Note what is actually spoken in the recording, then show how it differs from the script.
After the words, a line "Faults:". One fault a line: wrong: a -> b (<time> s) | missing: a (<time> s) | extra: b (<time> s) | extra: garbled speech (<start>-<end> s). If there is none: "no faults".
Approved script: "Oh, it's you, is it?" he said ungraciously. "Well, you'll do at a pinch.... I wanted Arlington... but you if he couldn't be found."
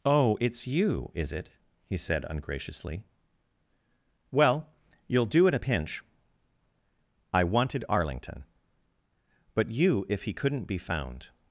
"Oh, it's you, is it?" he said ungraciously. "Well, you'll do at a pinch.... I wanted Arlington... but you if he couldn't be found."
Faults:
no faults